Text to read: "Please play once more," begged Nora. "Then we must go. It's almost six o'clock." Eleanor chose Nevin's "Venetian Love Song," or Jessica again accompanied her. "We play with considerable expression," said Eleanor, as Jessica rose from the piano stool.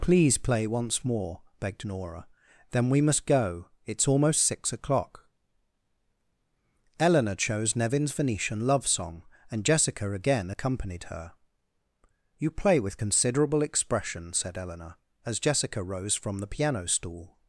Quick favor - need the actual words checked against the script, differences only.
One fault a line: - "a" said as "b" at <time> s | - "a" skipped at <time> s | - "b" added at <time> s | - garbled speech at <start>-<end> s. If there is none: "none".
- "or" said as "and" at 9.5 s
- "We" said as "You" at 12.4 s